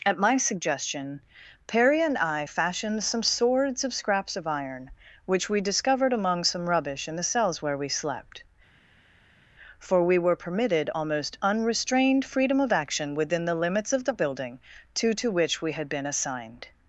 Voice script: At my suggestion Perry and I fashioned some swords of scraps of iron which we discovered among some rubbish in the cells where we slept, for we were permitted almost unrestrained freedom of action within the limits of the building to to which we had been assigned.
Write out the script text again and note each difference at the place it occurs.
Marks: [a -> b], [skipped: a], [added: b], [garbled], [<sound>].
At my suggestion Perry and I fashioned some swords of scraps of iron which we discovered among some rubbish in the cells where we slept, for we were permitted almost unrestrained freedom of action within the limits of the building to to which we had been assigned.